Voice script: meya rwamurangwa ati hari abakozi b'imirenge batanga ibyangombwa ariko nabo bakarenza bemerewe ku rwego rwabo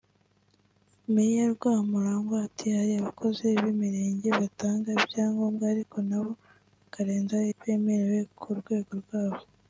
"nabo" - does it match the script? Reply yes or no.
yes